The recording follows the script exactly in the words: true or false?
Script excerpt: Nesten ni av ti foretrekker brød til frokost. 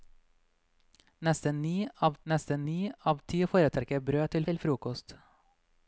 false